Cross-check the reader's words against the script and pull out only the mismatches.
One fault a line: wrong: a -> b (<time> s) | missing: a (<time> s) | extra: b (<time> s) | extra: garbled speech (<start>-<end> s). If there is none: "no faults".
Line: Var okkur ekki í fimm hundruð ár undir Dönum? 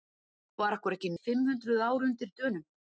no faults